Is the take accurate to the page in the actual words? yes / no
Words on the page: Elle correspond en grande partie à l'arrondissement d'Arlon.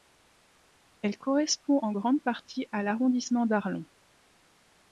yes